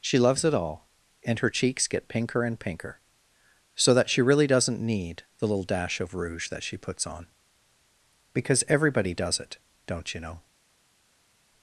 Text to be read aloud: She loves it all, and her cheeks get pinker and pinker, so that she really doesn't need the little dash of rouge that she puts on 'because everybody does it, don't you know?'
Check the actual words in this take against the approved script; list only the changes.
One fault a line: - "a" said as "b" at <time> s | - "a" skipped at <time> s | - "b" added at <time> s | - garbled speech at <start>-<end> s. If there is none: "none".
none